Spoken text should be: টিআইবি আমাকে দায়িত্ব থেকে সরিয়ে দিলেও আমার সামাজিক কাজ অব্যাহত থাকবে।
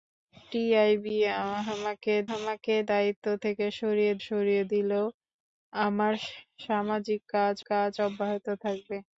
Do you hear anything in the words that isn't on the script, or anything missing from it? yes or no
yes